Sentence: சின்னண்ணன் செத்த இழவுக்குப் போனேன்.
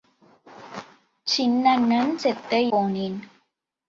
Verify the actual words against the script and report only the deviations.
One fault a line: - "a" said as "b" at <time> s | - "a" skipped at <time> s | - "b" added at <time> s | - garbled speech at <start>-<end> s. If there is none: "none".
- "இழவுக்குப்" skipped at 2.6 s